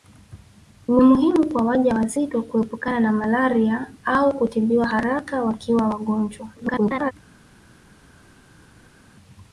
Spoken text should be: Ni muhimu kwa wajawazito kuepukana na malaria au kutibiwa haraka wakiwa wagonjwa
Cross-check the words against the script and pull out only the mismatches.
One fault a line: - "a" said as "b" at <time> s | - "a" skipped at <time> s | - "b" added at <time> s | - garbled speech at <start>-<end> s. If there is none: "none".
- garbled speech at 6.6-7.1 s